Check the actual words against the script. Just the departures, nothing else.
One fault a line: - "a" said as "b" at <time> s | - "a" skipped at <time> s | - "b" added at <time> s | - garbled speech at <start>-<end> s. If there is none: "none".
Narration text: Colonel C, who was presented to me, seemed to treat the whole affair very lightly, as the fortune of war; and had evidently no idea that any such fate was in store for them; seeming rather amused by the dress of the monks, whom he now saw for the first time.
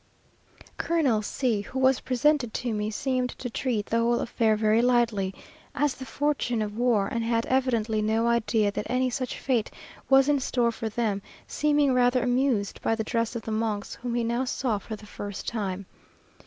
none